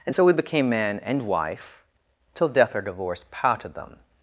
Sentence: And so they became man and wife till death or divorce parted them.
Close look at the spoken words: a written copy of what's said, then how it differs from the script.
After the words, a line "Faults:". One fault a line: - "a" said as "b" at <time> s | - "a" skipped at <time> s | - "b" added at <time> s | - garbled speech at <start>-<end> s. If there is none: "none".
And so we became man and wife till death or divorce parted them.
Faults:
- "they" said as "we" at 0.2 s